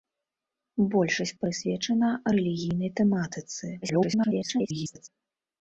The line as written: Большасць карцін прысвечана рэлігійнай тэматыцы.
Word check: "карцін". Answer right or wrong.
wrong